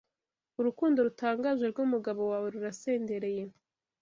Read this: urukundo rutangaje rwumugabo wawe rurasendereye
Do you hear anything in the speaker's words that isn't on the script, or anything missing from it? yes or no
no